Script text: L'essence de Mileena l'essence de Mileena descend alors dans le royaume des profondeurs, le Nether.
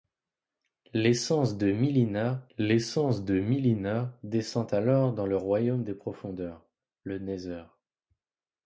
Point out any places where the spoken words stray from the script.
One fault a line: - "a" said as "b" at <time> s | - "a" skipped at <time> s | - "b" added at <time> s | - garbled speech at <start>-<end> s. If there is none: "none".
none